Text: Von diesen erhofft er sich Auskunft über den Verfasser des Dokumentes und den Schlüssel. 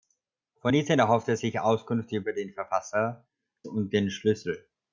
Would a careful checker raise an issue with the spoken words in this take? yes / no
yes